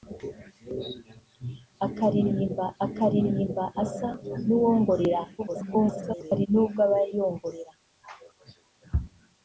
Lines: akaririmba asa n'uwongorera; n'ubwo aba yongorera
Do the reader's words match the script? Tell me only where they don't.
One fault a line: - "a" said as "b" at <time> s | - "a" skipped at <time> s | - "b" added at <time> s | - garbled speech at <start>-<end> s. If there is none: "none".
- "akaririmba" added at 2.8 s
- garbled speech at 5.4-6.5 s